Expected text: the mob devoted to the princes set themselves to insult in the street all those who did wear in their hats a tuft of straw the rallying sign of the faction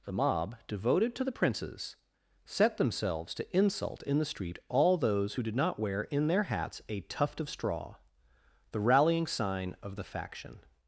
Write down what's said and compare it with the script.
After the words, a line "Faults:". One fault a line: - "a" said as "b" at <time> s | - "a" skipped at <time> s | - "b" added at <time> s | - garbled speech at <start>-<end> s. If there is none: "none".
the mob devoted to the princes set themselves to insult in the street all those who did not wear in their hats a tuft of straw the rallying sign of the faction
Faults:
- "not" added at 5.5 s